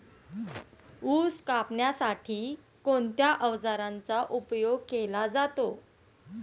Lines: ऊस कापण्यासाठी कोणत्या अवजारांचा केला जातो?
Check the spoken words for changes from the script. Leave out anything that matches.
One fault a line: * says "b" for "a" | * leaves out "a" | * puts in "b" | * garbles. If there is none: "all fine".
* puts in "उपयोग"